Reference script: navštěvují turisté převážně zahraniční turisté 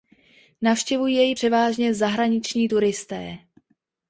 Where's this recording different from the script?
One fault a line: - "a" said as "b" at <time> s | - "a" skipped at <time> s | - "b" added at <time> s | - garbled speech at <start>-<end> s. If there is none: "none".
- "turisté" said as "jej" at 1.1 s